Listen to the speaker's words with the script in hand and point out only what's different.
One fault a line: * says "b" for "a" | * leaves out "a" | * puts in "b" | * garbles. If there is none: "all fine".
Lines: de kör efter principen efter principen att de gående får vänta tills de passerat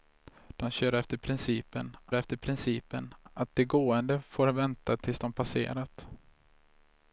all fine